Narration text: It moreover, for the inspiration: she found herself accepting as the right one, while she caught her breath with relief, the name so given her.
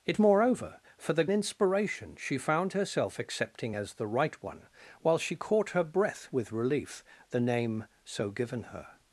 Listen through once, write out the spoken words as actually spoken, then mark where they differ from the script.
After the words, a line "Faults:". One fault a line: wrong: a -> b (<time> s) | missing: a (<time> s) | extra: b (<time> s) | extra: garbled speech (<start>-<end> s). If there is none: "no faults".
It moreover, for the inspiration: she found herself accepting as the right one, while she caught her breath with relief, the name so given her.
Faults:
no faults